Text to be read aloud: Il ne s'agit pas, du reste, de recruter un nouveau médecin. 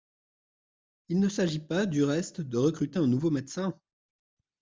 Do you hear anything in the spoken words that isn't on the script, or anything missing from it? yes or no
no